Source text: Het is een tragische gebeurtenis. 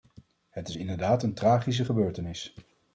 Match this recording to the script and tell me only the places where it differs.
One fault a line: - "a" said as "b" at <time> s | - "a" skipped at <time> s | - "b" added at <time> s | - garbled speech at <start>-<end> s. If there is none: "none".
- "inderdaad" added at 0.7 s